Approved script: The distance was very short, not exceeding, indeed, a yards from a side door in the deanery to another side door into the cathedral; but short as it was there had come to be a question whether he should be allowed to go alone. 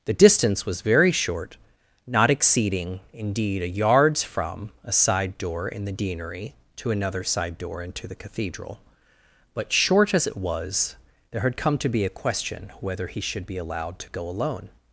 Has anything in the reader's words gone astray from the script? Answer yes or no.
no